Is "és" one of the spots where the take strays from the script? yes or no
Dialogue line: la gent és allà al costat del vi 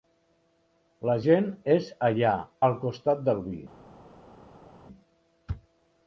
no